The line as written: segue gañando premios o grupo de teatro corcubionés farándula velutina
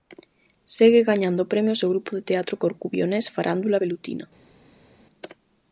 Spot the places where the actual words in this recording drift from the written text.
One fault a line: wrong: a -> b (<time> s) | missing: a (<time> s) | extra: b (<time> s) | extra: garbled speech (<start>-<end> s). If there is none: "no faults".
no faults